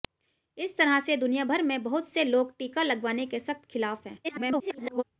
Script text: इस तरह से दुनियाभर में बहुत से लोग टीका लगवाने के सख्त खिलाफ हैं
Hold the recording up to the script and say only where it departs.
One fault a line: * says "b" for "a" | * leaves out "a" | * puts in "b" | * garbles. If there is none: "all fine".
* garbles